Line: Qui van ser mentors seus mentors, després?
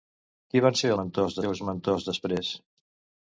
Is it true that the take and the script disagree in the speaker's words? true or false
false